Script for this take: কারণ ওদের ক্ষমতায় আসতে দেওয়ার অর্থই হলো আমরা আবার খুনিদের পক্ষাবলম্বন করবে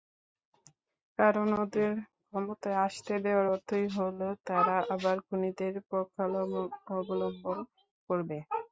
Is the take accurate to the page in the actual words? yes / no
no